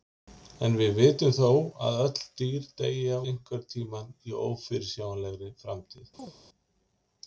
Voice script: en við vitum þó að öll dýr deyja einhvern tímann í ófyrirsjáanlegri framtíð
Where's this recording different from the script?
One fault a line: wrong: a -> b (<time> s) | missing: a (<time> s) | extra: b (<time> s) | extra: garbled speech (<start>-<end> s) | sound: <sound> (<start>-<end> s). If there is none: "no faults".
sound: chirp (6.2-6.3 s)